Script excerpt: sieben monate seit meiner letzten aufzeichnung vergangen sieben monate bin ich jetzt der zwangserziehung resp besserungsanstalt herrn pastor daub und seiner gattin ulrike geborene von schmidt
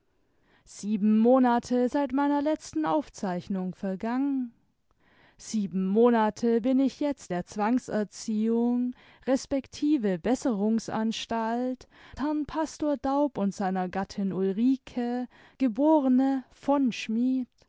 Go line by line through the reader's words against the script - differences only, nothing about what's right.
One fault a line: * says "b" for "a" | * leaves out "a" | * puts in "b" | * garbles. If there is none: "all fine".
all fine